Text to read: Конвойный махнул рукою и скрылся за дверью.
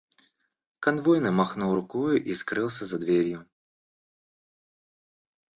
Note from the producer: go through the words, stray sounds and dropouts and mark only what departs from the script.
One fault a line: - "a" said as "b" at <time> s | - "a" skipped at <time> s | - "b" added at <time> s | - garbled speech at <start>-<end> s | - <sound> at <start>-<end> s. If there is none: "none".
none